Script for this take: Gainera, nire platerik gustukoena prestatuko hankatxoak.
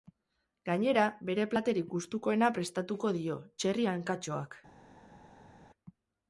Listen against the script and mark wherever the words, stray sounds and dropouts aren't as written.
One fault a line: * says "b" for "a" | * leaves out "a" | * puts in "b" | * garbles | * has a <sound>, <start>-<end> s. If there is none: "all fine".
* says "bere" for "nire"
* puts in "dio txerri"